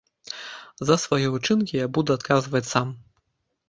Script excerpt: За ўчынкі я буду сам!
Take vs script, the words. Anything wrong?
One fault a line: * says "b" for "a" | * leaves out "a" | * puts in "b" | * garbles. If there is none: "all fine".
* puts in "свае"
* puts in "адказваць"